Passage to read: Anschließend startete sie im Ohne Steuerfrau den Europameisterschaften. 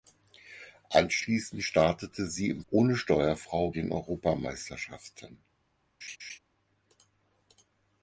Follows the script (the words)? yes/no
yes